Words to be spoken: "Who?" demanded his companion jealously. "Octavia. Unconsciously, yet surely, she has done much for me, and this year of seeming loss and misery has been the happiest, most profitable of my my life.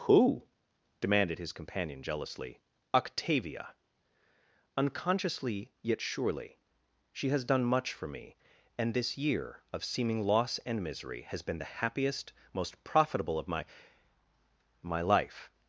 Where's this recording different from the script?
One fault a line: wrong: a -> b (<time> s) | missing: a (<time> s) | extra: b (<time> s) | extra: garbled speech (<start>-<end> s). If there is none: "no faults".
no faults